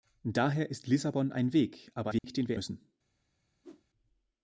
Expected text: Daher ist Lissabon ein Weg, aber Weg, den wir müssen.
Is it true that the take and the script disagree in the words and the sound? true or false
true